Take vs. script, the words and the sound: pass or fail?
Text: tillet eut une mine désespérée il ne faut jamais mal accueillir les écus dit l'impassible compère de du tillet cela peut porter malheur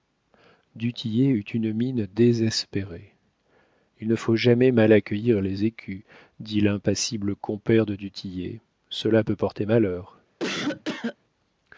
fail